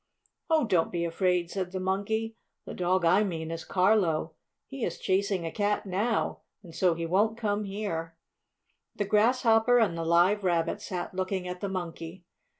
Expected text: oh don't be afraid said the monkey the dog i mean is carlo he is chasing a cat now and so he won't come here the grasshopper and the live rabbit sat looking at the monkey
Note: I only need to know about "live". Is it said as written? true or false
true